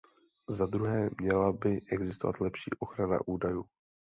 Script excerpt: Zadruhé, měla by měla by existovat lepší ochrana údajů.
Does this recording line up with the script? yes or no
no